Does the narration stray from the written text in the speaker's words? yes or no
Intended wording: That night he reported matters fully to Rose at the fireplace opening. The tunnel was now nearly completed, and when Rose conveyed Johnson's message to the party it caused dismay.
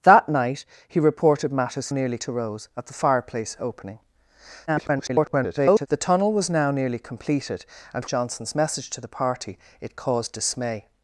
yes